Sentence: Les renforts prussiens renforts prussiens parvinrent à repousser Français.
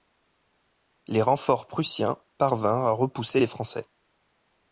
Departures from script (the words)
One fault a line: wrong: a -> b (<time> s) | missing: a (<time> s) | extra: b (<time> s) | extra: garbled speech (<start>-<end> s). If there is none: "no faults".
missing: renforts prussiens (2.2 s)
extra: les (3.4 s)